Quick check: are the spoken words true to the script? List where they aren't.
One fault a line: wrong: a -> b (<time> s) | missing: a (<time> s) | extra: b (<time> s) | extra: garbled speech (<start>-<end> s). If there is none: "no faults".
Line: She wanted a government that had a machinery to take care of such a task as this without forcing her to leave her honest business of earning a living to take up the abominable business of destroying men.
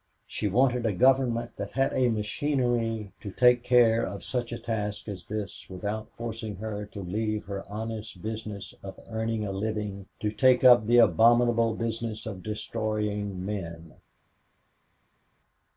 no faults